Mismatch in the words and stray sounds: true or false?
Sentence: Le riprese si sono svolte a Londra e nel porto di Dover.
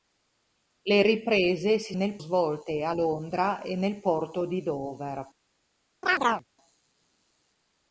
true